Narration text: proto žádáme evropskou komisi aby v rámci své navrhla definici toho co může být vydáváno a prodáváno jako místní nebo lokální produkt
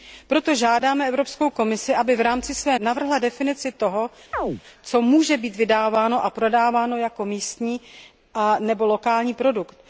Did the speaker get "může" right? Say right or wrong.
right